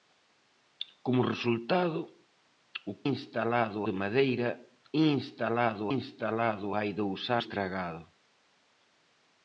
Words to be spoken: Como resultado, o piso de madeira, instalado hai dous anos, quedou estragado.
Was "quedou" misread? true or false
true